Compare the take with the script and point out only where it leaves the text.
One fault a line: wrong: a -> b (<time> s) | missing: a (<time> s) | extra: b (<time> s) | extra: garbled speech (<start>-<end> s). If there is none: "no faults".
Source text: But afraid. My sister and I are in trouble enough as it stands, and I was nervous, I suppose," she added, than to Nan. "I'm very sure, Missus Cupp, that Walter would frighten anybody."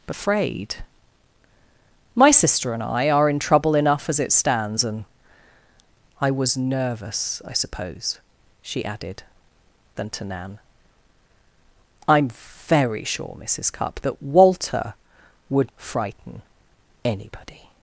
no faults